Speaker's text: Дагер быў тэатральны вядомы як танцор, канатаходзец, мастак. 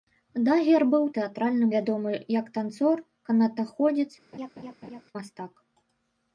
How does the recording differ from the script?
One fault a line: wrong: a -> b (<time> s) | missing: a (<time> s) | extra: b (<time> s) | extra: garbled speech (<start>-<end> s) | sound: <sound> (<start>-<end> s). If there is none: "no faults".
sound: laugh (4.3-5.0 s)